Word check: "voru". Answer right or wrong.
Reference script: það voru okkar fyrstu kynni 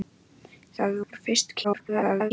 wrong